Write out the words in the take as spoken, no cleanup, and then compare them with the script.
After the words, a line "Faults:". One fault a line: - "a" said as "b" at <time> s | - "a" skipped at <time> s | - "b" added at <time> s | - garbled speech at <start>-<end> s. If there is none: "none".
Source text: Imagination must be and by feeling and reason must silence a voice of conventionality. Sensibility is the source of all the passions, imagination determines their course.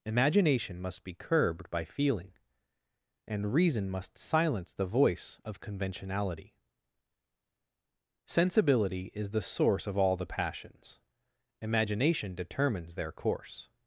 Imagination must be curbed by feeling and reason must silence the voice of conventionality. Sensibility is the source of all the passions, imagination determines their course.
Faults:
- "and" said as "curbed" at 1.1 s
- "a" said as "the" at 4.7 s